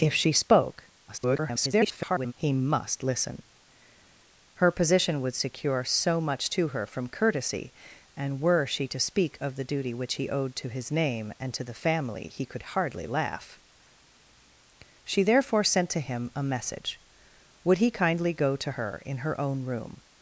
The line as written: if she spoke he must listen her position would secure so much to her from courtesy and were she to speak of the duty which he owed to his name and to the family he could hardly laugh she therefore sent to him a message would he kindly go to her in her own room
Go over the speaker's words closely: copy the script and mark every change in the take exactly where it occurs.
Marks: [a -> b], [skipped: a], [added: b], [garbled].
if she spoke [garbled] he must listen her position would secure so much to her from courtesy and were she to speak of the duty which he owed to his name and to the family he could hardly laugh she therefore sent to him a message would he kindly go to her in her own room